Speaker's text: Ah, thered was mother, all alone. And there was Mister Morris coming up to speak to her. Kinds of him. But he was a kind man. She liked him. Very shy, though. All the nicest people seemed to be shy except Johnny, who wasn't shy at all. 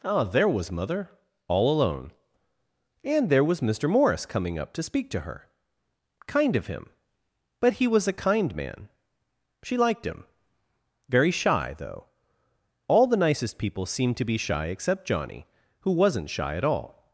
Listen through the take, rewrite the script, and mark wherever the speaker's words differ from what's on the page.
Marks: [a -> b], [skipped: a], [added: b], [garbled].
Ah, [thered -> there] was mother, all alone. And there was Mister Morris coming up to speak to her. [Kinds -> Kind] of him. But he was a kind man. She liked him. Very shy, though. All the nicest people seemed to be shy except Johnny, who wasn't shy at all.